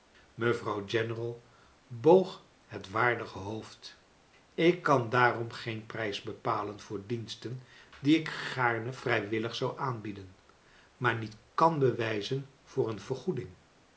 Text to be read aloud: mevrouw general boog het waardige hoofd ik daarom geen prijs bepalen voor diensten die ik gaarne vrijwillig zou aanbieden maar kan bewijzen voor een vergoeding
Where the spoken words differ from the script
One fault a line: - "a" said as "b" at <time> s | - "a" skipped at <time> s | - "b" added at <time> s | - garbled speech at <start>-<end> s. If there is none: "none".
- "kan" added at 4.8 s
- "niet" added at 11.2 s